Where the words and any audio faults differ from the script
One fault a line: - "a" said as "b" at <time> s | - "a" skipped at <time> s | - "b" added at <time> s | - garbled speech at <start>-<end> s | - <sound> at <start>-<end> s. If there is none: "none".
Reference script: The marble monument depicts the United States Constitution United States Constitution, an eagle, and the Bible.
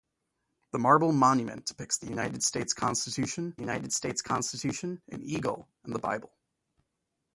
none